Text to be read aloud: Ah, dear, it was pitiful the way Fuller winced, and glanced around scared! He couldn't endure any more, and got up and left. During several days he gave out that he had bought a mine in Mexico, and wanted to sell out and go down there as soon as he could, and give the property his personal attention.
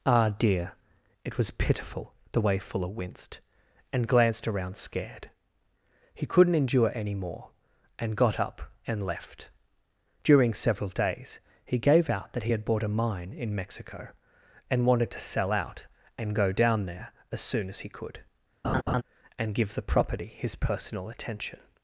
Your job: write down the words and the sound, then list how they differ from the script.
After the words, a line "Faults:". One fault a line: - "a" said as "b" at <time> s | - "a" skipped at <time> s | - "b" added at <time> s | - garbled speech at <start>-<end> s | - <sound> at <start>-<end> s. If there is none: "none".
Ah, dear, it was pitiful the way Fuller winced, and glanced around scared! He couldn't endure any more, and got up and left. During several days he gave out that he had bought a mine in Mexico, and wanted to sell out and go down there as soon as he could, and give the property his personal attention.
Faults:
- laugh at 18.6-19.0 s